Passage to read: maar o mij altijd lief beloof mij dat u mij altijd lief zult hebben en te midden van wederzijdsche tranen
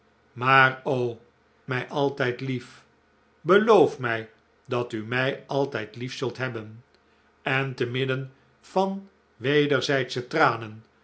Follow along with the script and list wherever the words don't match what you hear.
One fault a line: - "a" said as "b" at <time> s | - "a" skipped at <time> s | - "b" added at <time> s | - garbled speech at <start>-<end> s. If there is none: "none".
none